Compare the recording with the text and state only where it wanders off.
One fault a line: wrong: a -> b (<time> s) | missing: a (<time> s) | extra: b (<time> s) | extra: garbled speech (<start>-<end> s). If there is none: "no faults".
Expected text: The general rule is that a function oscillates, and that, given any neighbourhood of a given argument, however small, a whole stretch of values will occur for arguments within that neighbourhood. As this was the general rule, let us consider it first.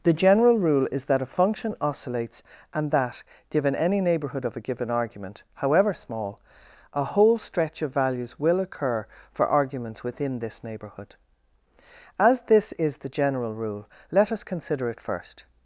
wrong: that -> this (10.4 s)
wrong: was -> is (12.7 s)